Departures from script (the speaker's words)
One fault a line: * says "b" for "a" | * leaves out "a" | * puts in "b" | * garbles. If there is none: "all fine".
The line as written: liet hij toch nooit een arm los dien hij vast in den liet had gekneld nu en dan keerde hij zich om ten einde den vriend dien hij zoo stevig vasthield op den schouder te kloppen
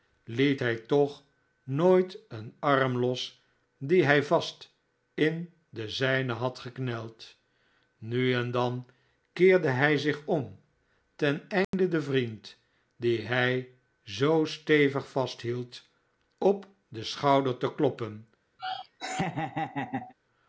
* says "zijnen" for "liet"